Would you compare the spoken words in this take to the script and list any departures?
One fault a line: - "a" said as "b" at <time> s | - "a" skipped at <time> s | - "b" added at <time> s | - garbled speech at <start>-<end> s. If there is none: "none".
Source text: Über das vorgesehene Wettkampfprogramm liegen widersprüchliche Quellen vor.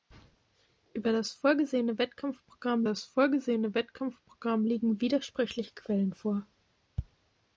- "das vorgesehene Wettkampfprogramm" added at 2.8 s